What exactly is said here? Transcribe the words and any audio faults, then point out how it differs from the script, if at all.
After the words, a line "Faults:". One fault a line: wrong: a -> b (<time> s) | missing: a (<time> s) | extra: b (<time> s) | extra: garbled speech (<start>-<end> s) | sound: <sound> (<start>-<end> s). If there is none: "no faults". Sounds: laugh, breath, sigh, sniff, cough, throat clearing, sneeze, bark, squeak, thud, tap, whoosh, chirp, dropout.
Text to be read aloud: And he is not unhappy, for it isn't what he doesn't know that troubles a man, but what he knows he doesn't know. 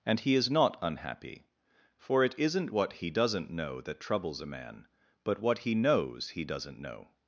And he is not unhappy, for it isn't what he doesn't know that troubles a man, but what he knows he doesn't know.
Faults:
no faults